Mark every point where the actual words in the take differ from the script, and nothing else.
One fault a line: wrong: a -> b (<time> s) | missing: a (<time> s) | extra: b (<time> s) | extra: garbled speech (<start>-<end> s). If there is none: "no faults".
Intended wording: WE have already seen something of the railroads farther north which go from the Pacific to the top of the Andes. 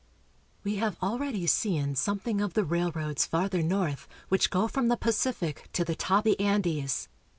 missing: of (6.3 s)